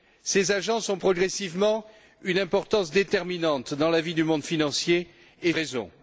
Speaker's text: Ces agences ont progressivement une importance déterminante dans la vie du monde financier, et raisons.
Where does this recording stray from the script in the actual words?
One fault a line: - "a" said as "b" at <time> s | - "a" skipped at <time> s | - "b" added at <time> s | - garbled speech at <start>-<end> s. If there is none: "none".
none